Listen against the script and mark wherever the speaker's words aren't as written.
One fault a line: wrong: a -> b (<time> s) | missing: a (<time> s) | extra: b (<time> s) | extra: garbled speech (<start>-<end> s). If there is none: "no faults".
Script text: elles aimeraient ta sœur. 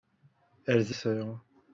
missing: aimeraient ta (0.9 s)